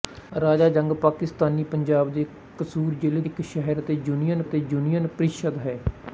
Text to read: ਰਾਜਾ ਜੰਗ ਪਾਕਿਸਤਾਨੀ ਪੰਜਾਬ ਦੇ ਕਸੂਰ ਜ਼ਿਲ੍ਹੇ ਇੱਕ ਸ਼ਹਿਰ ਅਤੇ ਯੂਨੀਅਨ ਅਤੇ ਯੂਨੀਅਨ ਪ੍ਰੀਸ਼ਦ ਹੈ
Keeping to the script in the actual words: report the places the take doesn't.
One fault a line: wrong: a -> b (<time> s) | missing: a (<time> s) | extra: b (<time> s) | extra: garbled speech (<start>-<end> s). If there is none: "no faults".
no faults